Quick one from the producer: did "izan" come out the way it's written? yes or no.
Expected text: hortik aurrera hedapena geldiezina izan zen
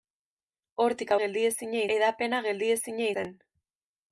no